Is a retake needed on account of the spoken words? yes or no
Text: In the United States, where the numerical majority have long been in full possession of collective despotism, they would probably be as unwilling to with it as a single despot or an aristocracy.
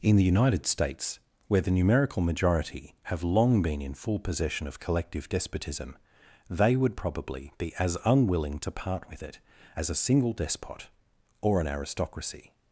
yes